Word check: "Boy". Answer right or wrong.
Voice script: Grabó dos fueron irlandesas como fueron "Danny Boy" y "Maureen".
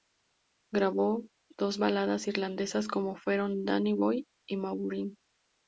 right